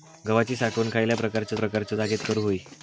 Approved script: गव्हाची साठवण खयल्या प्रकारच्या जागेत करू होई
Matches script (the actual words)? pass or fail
fail